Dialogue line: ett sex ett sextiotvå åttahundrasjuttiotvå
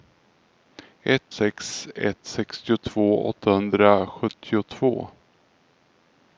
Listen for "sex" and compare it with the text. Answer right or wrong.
right